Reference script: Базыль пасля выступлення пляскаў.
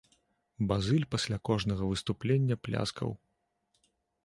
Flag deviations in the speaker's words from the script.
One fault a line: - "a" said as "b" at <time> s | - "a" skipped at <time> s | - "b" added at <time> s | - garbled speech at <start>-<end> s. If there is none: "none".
- "кожнага" added at 1.5 s